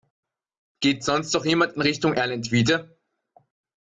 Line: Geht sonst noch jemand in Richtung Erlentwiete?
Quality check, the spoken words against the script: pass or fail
pass